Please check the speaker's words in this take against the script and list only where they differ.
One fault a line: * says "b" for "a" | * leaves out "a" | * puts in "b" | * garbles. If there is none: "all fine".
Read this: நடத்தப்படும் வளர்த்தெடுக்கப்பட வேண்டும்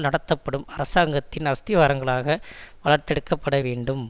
* puts in "அரசாங்கத்தின் அஸ்திவாரங்களாக"